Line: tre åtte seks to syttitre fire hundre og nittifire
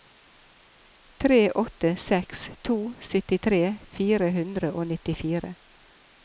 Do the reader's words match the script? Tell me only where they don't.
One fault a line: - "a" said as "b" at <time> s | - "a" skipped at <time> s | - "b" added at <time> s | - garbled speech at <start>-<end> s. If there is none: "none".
none